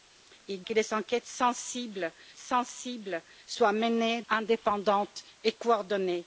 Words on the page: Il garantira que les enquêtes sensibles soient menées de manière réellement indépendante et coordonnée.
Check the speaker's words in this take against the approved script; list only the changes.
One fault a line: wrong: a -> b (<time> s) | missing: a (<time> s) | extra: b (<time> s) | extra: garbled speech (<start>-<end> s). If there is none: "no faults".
missing: garantira (0.6 s)
extra: sensibles (2.4 s)
missing: de manière réellement (4.2 s)